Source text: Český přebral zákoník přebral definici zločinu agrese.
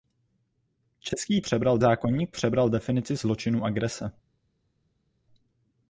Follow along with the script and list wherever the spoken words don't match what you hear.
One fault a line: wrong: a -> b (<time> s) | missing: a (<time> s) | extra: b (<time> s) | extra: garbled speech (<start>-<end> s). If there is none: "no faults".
no faults